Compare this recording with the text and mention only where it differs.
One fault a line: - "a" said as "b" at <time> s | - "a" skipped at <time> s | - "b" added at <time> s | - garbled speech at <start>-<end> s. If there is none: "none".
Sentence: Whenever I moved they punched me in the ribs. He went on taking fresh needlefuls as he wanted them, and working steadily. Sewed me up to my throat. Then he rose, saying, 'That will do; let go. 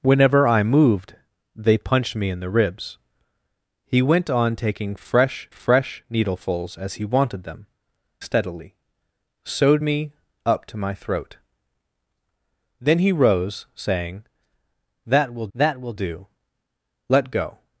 - "fresh" added at 5.5 s
- "and working" skipped at 7.7 s
- "that will" added at 15.5 s